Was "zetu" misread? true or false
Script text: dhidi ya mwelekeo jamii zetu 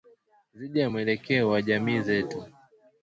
false